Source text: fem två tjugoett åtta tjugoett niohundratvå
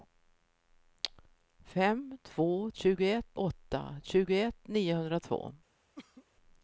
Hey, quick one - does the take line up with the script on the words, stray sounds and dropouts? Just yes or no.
no